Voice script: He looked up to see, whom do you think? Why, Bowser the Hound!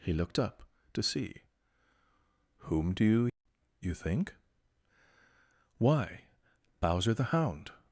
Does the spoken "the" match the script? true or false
true